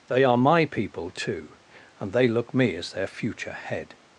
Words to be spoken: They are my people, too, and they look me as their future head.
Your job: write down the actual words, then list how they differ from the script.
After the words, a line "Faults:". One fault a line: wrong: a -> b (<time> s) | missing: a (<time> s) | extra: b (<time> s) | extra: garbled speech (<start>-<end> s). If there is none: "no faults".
They are my people, too, and they look me as their future head.
Faults:
no faults